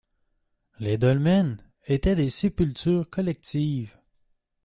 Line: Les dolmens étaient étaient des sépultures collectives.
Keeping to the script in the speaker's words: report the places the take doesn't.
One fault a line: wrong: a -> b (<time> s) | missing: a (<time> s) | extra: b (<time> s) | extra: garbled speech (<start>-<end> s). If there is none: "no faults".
missing: étaient (2.1 s)